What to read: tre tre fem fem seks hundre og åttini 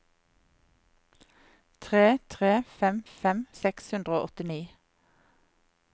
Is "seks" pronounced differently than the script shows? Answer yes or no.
no